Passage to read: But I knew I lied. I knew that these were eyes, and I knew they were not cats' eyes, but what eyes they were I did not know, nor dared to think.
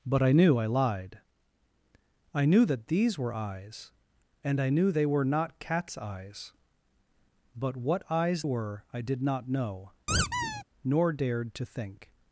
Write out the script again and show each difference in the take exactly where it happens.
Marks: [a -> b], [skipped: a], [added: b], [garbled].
But I knew I lied. I knew that these were eyes, and I knew they were not cats' eyes, but what eyes [skipped: they] were I did not know, nor dared to think.